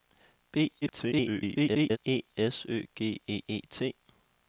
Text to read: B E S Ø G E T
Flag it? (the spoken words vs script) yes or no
yes